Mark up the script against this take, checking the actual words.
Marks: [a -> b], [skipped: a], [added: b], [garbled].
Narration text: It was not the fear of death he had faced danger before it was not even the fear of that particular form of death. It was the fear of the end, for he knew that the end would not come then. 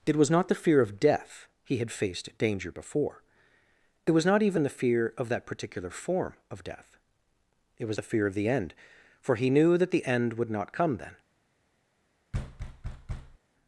It was not the fear of death he had faced danger before it was not even the fear of that particular form of death. It was the fear of the end, for he knew that the end would not come then.